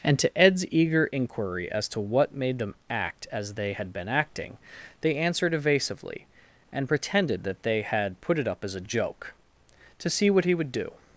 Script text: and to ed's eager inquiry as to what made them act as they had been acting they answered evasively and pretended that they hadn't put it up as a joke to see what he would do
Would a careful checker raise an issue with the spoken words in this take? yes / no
yes